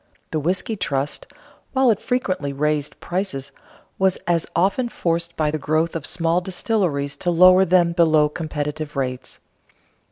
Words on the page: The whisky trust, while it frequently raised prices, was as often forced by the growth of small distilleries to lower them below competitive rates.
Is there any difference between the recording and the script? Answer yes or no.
no